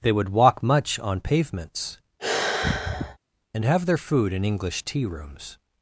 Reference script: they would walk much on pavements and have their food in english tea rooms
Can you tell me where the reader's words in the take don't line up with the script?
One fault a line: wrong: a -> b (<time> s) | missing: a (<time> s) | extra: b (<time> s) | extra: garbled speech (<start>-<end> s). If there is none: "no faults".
no faults